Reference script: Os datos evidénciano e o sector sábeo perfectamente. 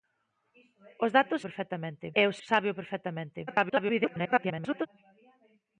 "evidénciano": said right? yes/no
no